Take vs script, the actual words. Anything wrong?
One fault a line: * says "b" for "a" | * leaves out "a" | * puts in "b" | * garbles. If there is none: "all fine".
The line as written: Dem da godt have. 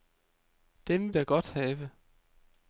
all fine